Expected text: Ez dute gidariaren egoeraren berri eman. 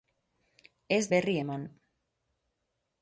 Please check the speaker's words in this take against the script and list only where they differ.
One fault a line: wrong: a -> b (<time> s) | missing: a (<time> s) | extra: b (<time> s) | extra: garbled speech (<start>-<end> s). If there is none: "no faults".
missing: dute gidariaren egoeraren (1.0 s)